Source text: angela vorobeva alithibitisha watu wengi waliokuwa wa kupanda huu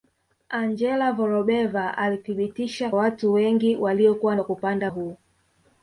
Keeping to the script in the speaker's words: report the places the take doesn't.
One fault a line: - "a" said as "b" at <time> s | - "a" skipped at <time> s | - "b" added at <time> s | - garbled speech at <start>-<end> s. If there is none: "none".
none